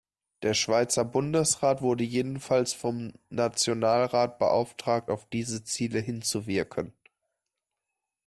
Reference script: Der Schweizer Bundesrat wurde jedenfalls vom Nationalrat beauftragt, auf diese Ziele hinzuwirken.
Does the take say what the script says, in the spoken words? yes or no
yes